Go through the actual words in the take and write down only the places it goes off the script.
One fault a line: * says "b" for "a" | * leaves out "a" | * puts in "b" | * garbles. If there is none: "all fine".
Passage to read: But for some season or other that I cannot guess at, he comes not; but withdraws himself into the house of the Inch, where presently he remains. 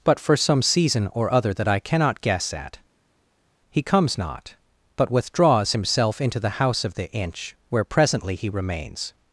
all fine